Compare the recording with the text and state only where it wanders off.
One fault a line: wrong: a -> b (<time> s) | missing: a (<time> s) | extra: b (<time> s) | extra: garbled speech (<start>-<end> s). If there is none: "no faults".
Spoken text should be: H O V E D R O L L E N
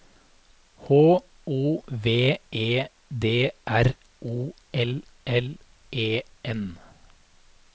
no faults